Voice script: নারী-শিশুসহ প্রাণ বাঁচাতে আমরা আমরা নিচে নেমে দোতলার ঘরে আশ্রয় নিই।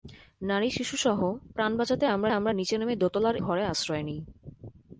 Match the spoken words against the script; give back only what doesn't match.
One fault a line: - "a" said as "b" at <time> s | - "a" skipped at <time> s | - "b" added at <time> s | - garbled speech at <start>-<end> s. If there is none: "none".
none